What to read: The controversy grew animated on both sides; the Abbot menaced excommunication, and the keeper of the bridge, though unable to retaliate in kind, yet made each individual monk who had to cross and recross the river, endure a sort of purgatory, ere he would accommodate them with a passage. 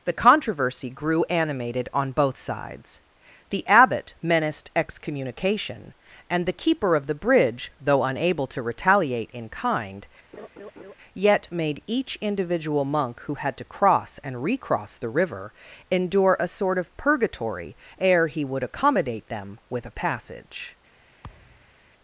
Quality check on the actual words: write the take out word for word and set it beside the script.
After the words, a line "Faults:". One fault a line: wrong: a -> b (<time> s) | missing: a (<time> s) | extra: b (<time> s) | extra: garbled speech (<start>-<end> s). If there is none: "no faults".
The controversy grew animated on both sides; the Abbot menaced excommunication, and the keeper of the bridge, though unable to retaliate in kind, yet made each individual monk who had to cross and recross the river, endure a sort of purgatory, ere he would accommodate them with a passage.
Faults:
no faults